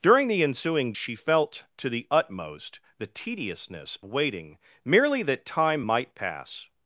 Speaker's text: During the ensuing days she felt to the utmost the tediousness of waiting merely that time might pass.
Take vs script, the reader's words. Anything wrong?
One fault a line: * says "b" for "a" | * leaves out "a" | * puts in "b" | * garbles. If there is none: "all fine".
* leaves out "days"
* leaves out "of"